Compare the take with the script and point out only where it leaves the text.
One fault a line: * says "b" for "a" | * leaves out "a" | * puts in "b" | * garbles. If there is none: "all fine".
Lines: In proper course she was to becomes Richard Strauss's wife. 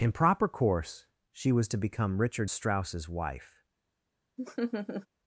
* says "become" for "becomes"